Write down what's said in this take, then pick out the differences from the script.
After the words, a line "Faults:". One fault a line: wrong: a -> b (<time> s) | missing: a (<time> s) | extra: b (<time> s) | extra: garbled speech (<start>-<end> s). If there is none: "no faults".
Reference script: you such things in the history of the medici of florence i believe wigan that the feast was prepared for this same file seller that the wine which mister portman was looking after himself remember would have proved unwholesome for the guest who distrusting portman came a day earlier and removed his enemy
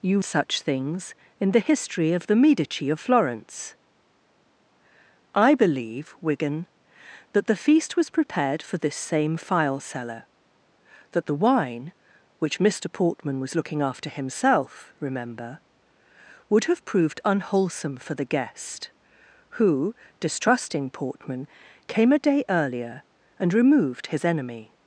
you such things in the history of the medici of florence i believe wigan that the feast was prepared for this same file seller that the wine which mister portman was looking after himself remember would have proved unwholesome for the guest who distrusting portman came a day earlier and removed his enemy
Faults:
no faults